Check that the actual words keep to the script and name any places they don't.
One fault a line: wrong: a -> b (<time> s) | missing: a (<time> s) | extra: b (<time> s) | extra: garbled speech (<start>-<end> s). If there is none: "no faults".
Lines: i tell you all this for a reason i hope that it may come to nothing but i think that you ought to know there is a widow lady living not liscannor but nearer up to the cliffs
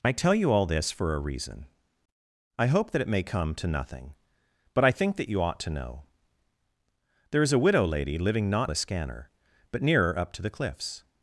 no faults